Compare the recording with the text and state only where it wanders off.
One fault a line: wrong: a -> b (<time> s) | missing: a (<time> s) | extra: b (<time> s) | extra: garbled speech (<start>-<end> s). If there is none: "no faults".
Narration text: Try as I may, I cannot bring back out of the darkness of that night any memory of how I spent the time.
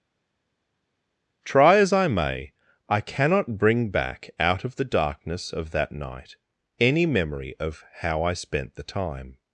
no faults